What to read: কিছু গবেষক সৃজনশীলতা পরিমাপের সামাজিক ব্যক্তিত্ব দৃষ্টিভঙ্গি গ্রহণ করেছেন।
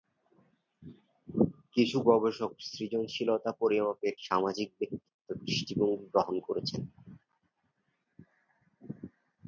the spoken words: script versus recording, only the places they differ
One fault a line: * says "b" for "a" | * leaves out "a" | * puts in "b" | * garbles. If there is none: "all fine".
all fine